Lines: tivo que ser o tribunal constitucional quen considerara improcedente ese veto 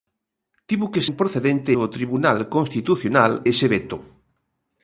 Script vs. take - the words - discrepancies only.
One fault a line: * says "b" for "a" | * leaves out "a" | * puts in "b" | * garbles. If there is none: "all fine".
* says "improcedente" for "ser"
* leaves out "quen considerara improcedente"